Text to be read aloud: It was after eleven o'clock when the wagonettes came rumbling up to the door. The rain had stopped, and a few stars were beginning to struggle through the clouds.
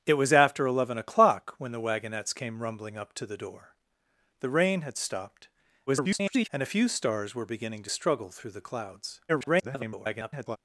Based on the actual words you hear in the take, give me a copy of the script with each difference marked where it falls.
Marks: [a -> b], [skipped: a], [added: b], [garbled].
It was after eleven o'clock when the wagonettes came rumbling up to the door. The rain had stopped, [garbled] and a few stars were beginning to struggle through the clouds. [garbled]